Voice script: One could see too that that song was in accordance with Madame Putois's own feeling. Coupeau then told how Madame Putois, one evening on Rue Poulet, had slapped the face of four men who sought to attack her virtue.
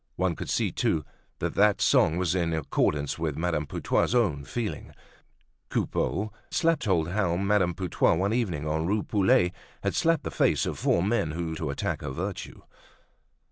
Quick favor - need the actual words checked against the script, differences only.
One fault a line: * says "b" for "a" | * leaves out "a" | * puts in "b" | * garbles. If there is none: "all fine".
* says "slapped" for "then"
* leaves out "sought"